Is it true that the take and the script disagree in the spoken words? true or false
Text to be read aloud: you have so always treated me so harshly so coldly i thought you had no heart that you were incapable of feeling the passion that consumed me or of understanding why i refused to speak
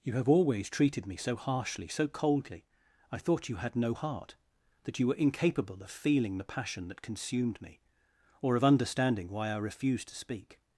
true